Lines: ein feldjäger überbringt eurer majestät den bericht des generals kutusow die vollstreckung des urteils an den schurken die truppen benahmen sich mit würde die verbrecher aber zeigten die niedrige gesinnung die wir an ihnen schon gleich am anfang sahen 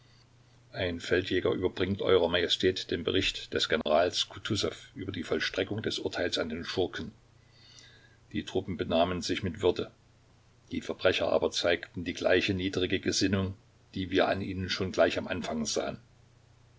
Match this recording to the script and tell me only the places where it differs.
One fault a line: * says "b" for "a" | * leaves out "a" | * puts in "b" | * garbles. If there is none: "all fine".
* puts in "über"
* puts in "gleiche"